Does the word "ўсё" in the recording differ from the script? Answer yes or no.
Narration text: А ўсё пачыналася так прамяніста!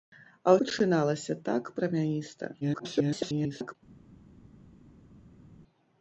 yes